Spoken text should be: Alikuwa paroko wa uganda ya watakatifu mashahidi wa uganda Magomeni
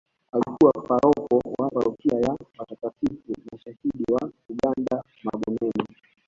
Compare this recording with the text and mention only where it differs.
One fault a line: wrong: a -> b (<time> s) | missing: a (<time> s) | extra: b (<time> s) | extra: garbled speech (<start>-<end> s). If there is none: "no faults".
wrong: uganda -> parokia (1.7 s)